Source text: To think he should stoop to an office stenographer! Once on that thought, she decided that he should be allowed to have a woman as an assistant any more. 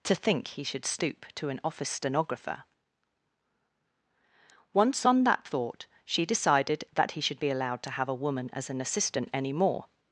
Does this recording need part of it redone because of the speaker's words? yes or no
no